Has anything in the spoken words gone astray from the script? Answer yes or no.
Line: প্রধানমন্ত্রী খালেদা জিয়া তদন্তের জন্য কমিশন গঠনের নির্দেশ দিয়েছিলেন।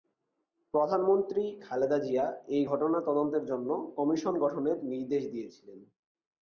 yes